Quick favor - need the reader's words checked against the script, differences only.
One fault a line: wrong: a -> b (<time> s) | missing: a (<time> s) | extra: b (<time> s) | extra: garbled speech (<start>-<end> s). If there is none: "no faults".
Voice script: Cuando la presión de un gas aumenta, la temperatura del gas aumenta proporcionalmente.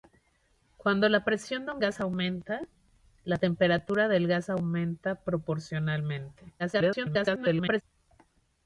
extra: garbled speech (6.6-7.8 s)